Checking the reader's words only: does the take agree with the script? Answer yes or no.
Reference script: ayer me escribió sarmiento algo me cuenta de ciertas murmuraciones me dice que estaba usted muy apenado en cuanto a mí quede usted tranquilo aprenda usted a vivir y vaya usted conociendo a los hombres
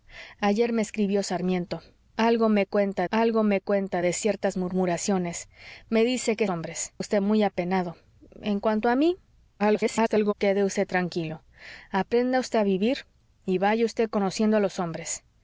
no